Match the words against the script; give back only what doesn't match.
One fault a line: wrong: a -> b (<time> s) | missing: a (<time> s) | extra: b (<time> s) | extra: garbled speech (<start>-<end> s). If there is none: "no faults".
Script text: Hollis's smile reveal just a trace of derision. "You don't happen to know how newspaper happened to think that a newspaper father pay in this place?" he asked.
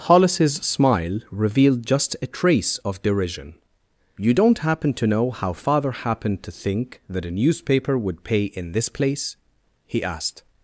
wrong: reveal -> revealed (1.3 s)
wrong: newspaper -> father (5.5 s)
wrong: father -> would (8.0 s)